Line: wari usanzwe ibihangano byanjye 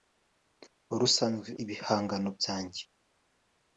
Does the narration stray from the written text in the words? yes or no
no